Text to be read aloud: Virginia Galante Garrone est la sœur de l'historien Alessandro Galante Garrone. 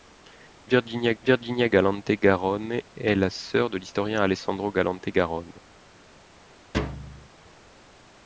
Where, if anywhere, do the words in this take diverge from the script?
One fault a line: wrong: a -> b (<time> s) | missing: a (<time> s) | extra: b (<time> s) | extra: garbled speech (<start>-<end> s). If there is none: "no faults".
extra: virginia (1.2 s)